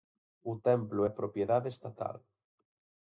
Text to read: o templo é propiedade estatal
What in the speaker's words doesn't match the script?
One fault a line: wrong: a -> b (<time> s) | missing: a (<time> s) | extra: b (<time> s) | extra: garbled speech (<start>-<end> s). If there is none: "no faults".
no faults